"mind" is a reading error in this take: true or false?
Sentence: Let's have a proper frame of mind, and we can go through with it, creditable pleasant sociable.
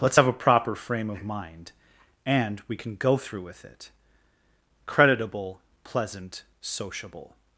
false